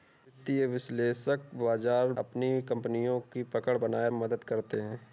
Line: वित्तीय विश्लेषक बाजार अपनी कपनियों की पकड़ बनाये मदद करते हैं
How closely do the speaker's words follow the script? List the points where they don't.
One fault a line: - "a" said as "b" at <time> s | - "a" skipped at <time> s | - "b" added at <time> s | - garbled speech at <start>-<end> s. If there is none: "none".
none